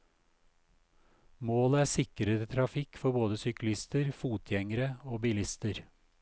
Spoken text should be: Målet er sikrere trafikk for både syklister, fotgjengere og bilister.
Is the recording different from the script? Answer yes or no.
no